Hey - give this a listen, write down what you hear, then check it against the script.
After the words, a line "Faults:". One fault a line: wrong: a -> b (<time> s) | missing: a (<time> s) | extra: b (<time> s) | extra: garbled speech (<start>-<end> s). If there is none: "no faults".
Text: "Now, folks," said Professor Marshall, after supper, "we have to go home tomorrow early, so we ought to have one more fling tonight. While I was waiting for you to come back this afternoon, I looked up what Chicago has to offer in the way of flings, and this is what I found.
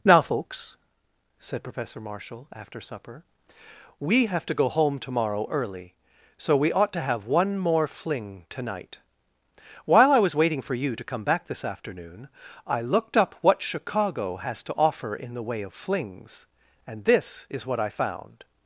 "Now, folks," said Professor Marshall, after supper, "we have to go home tomorrow early, so we ought to have one more fling tonight. While I was waiting for you to come back this afternoon, I looked up what Chicago has to offer in the way of flings, and this is what I found.
Faults:
no faults